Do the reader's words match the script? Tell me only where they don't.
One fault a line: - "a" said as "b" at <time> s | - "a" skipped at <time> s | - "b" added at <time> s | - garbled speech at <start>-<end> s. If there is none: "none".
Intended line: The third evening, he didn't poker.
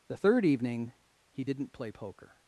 - "play" added at 1.7 s